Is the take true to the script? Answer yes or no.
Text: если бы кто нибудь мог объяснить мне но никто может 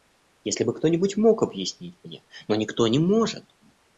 no